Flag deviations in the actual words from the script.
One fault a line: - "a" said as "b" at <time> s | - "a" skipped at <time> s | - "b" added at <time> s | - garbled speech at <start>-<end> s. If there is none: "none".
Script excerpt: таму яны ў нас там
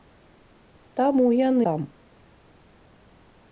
- "ў нас" skipped at 1.7 s